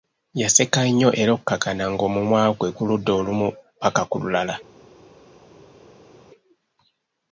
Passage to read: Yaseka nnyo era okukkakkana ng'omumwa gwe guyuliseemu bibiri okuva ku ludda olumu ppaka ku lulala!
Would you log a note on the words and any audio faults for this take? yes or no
yes